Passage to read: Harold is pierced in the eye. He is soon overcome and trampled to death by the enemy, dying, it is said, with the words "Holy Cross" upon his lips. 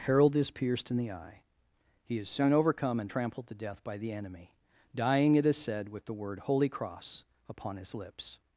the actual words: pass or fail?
fail